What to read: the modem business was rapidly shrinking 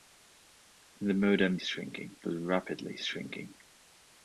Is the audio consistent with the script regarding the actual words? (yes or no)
no